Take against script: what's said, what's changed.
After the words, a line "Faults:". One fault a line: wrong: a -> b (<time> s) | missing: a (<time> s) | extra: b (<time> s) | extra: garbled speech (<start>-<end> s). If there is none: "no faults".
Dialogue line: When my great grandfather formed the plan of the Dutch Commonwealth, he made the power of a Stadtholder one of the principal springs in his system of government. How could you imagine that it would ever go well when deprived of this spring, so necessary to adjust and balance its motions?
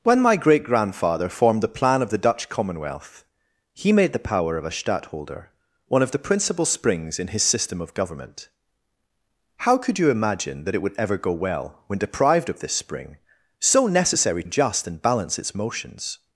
When my great grandfather formed the plan of the Dutch Commonwealth, he made the power of a Stadtholder one of the principal springs in his system of government. How could you imagine that it would ever go well when deprived of this spring, so necessary adjust and balance its motions?
Faults:
missing: to (14.4 s)